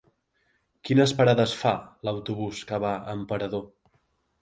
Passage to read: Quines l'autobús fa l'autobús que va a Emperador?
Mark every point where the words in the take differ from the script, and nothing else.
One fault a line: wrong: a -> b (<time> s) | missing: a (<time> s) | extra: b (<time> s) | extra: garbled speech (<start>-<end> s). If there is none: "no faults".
wrong: l'autobús -> parades (1.2 s)